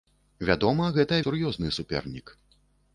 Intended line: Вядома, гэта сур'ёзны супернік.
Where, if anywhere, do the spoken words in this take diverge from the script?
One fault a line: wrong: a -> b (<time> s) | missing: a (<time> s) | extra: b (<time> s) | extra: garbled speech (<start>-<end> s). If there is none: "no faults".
no faults